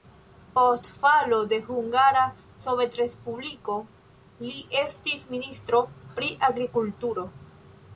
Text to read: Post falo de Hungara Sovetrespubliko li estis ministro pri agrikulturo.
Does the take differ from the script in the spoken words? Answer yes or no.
no